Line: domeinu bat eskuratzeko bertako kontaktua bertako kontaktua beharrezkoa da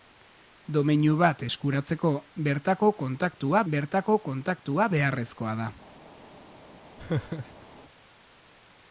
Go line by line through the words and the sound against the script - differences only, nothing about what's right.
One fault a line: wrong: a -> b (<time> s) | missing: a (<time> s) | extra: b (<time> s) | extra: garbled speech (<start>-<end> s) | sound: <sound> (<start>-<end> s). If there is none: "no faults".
sound: laugh (7.0-7.7 s)